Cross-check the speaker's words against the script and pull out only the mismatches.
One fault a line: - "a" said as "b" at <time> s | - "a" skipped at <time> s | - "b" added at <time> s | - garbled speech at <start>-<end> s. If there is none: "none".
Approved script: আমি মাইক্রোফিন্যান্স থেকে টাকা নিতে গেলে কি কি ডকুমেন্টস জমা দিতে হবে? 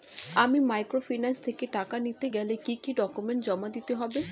none